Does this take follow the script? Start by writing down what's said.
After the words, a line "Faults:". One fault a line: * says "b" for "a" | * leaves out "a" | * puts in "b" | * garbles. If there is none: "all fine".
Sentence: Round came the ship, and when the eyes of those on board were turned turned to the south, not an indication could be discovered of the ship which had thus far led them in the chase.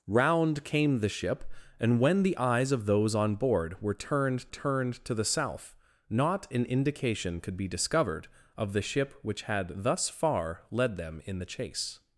Round came the ship, and when the eyes of those on board were turned turned to the south, not an indication could be discovered of the ship which had thus far led them in the chase.
Faults:
all fine